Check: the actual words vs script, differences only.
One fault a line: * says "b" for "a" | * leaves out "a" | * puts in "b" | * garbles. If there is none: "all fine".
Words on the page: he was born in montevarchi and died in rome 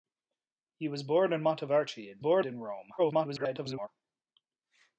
* says "born" for "died"
* garbles